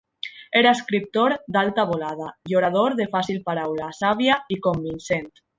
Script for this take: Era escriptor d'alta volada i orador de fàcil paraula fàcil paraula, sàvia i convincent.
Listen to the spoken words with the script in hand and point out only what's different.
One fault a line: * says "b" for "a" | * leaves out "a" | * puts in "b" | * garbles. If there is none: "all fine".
* leaves out "fàcil paraula"